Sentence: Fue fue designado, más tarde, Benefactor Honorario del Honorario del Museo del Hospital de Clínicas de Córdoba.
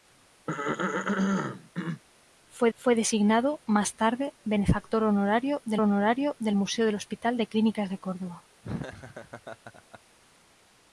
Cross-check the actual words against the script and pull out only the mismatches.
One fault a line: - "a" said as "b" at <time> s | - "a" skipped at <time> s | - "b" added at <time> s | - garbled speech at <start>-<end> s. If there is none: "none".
none